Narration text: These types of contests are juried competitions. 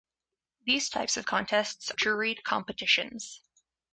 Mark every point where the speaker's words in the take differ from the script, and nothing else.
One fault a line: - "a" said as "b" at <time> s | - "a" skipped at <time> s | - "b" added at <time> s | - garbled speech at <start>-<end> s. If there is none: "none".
- "are" skipped at 1.9 s